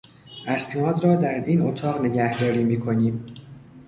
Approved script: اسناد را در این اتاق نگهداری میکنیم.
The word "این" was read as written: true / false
true